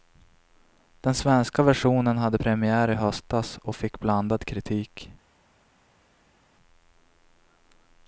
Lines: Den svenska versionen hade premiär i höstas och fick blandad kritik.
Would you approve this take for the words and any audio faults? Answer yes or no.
yes